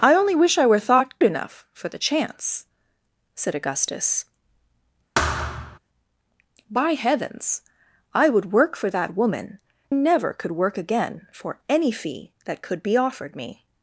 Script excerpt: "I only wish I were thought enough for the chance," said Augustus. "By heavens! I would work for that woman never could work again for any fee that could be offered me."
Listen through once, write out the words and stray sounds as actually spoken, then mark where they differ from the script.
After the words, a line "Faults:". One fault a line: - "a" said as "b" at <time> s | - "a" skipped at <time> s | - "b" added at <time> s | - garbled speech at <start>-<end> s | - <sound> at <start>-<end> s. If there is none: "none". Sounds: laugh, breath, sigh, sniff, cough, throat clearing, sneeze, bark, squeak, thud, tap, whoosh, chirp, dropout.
"I only wish I were thought enough for the chance," said Augustus. "By heavens! I would work for that woman never could work again for any fee that could be offered me."
Faults:
- thud at 5.2-5.8 s